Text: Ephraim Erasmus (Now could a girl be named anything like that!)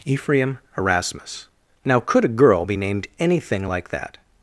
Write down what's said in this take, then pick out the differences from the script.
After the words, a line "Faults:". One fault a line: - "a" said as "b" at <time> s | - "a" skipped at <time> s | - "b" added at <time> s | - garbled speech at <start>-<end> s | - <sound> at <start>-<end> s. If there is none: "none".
Ephraim Erasmus (Now could a girl be named anything like that!)
Faults:
none